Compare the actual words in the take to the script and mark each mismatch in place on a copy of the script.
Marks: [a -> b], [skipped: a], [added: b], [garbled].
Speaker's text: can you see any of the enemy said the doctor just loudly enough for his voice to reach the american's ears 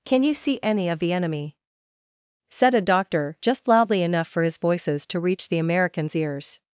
can you see any of the enemy said [the -> a] doctor just loudly enough for his [voice -> voices] to reach the american's ears